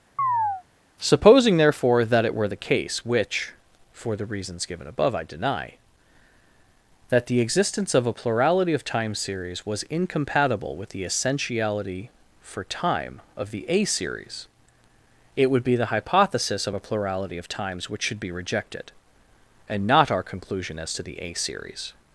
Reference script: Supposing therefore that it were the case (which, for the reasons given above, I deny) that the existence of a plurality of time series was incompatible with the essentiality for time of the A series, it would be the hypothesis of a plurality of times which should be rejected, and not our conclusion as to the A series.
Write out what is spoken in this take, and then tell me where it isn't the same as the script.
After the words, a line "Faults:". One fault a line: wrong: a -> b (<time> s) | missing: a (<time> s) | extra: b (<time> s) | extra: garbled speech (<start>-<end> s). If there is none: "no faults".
Supposing therefore that it were the case (which, for the reasons given above, I deny) that the existence of a plurality of time series was incompatible with the essentiality for time of the A series, it would be the hypothesis of a plurality of times which should be rejected, and not our conclusion as to the A series.
Faults:
no faults